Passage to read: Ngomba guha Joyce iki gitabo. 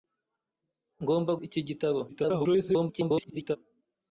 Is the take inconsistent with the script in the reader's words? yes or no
yes